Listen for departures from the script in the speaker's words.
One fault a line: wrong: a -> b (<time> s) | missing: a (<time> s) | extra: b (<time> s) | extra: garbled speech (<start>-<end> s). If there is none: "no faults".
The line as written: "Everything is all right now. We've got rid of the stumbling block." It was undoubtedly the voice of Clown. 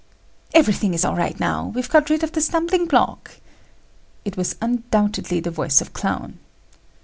no faults